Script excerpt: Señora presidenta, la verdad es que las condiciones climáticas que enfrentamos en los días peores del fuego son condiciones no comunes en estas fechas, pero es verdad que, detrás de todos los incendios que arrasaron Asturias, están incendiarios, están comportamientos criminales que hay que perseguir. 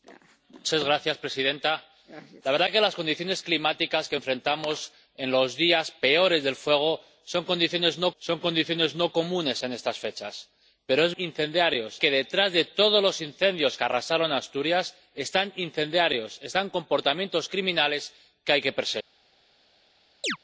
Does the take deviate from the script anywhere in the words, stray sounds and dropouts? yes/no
yes